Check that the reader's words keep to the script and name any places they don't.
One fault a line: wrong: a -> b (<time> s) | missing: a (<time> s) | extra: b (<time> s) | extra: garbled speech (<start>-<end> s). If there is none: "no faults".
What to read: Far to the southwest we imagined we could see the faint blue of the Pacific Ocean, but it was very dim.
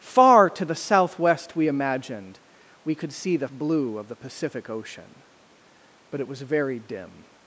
missing: faint (3.5 s)